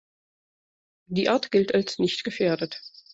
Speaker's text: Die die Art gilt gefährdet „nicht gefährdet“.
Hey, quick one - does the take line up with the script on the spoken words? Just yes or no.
no